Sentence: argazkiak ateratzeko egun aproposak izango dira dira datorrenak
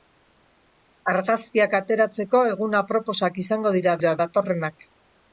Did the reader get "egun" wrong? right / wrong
right